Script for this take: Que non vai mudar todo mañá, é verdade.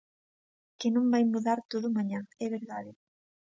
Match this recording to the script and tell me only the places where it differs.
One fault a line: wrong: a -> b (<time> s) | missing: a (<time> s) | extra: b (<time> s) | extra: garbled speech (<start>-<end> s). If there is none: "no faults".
no faults